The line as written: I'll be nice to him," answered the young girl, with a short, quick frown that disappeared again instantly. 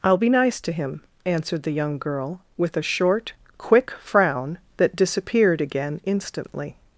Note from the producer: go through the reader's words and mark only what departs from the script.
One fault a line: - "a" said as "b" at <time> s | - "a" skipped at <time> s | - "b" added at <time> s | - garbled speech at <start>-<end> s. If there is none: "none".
none